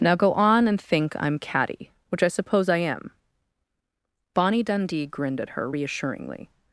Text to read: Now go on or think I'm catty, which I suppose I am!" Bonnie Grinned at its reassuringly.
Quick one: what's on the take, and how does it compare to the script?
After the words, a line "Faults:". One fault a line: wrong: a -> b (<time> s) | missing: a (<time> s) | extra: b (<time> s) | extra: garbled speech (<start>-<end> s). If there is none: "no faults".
Now go on and think I'm catty, which I suppose I am!" Bonnie Dundee grinned at her reassuringly.
Faults:
wrong: or -> and (0.7 s)
extra: Dundee (4.6 s)
wrong: its -> her (5.5 s)